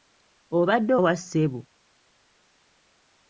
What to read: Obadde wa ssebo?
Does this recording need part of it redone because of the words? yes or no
no